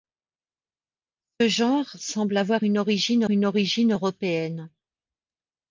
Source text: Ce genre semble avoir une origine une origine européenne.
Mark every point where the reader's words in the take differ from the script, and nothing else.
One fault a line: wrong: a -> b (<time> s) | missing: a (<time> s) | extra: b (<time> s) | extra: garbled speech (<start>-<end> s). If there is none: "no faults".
no faults